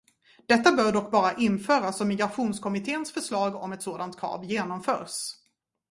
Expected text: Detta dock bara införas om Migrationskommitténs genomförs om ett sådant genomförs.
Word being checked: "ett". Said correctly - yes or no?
yes